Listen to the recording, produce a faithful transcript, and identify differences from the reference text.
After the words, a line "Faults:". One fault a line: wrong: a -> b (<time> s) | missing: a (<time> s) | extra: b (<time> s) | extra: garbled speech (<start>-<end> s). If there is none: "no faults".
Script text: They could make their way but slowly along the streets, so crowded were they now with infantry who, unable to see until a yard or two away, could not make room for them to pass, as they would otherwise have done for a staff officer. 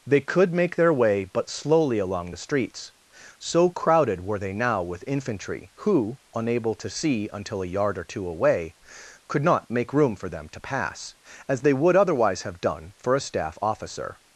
They could make their way but slowly along the streets, so crowded were they now with infantry who, unable to see until a yard or two away, could not make room for them to pass, as they would otherwise have done for a staff officer.
Faults:
no faults